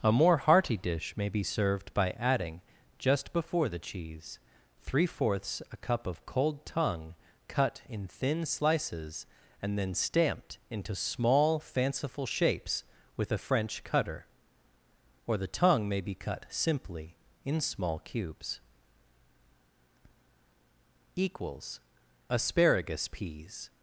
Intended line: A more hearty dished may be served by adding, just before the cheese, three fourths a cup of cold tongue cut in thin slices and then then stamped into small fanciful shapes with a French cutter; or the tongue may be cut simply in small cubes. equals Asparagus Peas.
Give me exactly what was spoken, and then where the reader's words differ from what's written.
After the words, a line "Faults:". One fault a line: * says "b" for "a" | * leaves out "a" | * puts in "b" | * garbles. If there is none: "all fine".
A more hearty dish may be served by adding, just before the cheese, three fourths a cup of cold tongue cut in thin slices and then stamped into small fanciful shapes with a French cutter; or the tongue may be cut simply in small cubes. equals Asparagus Peas.
Faults:
* says "dish" for "dished"
* leaves out "then"